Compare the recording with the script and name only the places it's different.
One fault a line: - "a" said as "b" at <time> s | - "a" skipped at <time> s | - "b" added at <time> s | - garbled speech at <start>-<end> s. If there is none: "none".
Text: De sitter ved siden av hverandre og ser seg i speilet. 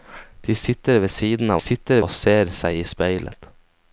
- "hverandre" said as "sitter" at 1.6 s